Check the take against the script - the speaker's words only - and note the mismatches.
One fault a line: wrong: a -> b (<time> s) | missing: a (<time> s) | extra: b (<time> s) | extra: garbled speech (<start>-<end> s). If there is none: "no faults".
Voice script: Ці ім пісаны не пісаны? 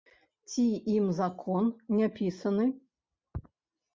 wrong: пісаны -> закон (1.2 s)